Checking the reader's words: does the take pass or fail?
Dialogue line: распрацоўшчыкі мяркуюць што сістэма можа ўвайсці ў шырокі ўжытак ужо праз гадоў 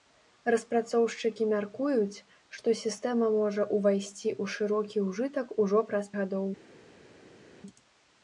pass